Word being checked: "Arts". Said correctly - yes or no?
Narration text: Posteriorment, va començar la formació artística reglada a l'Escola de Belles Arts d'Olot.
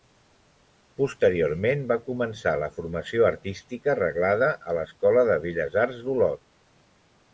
yes